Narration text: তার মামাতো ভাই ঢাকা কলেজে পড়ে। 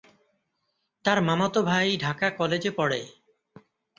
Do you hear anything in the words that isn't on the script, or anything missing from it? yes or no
no